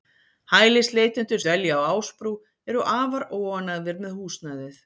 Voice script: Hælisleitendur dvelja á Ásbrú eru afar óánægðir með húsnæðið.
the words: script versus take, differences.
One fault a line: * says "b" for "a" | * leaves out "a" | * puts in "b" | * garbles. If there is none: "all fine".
all fine